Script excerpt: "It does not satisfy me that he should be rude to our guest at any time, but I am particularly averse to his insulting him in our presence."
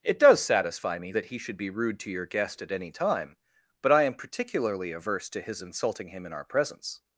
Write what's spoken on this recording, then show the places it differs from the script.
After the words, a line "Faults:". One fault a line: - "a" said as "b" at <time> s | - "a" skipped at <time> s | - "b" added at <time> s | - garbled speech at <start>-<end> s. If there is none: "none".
"It does satisfy me that he should be rude to your guest at any time, but I am particularly averse to his insulting him in our presence."
Faults:
- "not" skipped at 0.4 s
- "our" said as "your" at 2.1 s